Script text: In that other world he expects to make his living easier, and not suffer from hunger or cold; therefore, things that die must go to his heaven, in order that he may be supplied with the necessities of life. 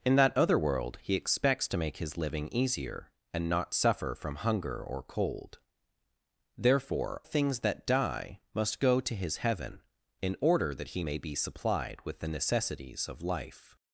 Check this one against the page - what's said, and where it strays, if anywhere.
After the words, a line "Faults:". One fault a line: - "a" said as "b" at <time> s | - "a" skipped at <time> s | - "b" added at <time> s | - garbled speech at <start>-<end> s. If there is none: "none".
In that other world he expects to make his living easier, and not suffer from hunger or cold; therefore, things that die must go to his heaven, in order that he may be supplied with the necessities of life.
Faults:
none